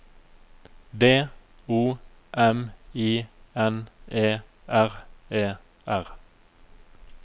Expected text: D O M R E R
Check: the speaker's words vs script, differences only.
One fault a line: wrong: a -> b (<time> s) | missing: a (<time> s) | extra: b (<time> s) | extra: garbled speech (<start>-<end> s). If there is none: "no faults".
extra: I N E (3.0 s)